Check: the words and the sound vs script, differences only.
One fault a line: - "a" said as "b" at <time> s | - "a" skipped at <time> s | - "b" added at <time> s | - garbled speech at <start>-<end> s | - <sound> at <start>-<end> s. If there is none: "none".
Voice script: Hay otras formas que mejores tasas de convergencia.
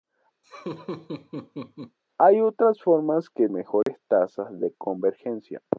- laugh at 0.4-2.0 s
- dropout at 3.8-3.9 s